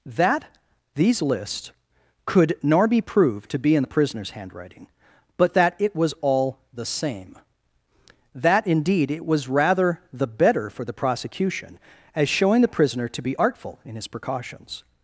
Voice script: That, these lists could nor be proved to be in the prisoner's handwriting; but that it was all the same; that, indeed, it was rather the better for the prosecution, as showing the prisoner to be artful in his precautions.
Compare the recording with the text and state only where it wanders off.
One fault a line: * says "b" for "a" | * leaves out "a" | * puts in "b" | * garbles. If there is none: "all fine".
all fine